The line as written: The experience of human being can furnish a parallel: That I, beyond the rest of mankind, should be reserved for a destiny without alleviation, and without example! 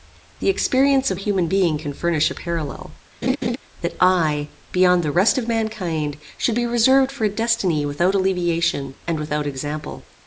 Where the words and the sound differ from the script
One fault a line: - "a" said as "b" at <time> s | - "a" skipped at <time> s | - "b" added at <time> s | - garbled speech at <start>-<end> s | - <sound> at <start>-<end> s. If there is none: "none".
- laugh at 3.2-3.6 s